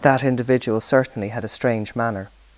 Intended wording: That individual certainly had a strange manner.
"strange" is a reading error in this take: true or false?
false